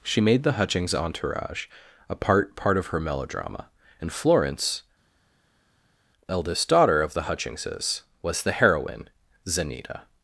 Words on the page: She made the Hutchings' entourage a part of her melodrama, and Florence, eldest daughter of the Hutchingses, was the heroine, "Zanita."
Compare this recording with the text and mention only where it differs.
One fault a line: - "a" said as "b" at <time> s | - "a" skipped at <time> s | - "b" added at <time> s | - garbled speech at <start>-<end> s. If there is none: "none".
- "part" added at 2.5 s